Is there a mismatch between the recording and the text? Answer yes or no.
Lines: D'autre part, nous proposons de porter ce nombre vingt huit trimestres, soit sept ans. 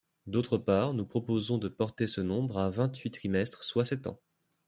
yes